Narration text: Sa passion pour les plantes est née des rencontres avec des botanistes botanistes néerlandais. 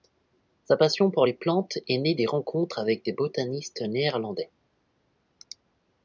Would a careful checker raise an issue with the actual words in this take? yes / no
yes